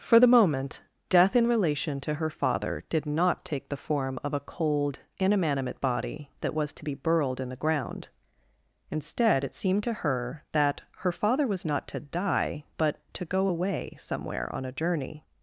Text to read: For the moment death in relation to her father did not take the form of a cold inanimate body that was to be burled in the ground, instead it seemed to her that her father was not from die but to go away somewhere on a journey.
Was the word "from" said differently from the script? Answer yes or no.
yes